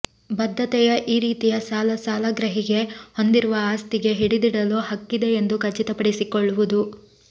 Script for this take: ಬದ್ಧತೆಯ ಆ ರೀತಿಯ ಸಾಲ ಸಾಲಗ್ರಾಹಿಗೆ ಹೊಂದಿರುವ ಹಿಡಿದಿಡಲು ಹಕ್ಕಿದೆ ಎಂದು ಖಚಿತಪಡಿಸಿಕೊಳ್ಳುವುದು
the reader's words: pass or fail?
fail